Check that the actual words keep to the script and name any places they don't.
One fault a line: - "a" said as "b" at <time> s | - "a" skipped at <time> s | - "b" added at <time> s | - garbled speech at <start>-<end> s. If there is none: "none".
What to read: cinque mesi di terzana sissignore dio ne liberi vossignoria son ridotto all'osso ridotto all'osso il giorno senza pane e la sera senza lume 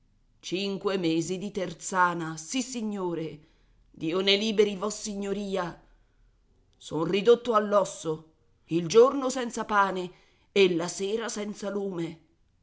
- "ridotto all'osso" skipped at 8.3 s